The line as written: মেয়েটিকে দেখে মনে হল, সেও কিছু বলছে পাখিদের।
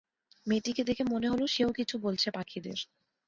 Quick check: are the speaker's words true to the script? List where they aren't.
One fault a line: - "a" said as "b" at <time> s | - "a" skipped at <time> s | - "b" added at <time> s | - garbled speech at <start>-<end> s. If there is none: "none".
none